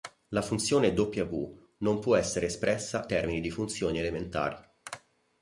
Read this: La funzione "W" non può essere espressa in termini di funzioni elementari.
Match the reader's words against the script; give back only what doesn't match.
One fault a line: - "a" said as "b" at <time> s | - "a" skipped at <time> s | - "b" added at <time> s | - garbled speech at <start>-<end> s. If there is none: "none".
- "in" skipped at 3.0 s